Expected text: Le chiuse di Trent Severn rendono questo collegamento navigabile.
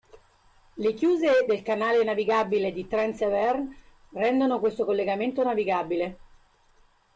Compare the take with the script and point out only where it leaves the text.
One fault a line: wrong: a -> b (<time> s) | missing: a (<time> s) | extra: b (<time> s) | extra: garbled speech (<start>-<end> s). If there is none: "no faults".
extra: del canale navigabile (1.5 s)